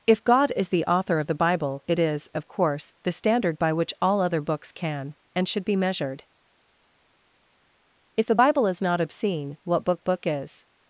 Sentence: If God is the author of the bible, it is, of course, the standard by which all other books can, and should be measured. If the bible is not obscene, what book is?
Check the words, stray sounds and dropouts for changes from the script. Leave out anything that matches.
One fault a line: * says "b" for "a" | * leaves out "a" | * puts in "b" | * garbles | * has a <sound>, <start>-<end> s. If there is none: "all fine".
* puts in "book"